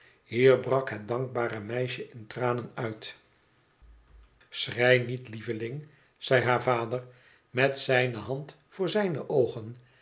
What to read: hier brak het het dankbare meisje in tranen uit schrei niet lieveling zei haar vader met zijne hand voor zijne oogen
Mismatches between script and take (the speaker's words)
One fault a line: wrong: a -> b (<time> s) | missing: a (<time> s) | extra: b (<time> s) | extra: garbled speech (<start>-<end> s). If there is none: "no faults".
missing: het (1.1 s)